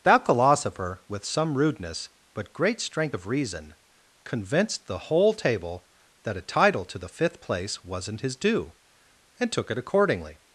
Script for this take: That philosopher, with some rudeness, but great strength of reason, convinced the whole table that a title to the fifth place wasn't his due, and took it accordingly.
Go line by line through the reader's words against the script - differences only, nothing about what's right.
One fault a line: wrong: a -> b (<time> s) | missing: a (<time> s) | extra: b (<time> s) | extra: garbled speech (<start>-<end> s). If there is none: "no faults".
no faults